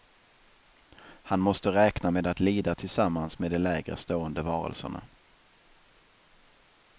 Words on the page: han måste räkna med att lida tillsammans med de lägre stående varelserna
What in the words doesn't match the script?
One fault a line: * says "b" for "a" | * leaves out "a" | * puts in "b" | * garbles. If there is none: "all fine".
all fine